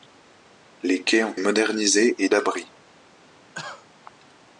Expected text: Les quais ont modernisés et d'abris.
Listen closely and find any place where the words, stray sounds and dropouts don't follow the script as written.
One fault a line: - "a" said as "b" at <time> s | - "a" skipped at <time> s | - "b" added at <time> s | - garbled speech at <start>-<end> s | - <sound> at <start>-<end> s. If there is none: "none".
- cough at 3.5-3.9 s